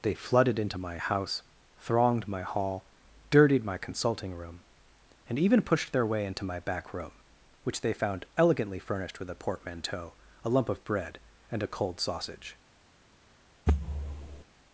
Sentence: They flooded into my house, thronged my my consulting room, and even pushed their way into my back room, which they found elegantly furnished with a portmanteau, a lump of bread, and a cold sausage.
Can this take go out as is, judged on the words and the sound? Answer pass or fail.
fail